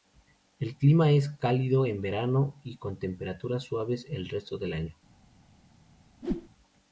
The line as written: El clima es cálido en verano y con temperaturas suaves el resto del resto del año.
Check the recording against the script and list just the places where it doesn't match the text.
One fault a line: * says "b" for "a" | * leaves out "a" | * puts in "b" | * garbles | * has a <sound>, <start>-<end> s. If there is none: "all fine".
* leaves out "resto del"
* has a whoosh, 6.2-6.5 s